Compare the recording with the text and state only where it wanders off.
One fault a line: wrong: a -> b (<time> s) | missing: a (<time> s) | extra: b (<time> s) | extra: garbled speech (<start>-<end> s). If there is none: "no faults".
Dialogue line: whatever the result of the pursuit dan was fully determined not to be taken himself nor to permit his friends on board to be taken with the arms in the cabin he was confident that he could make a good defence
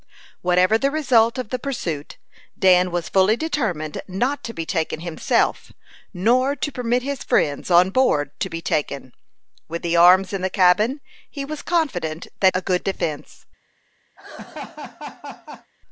missing: he could make (12.5 s)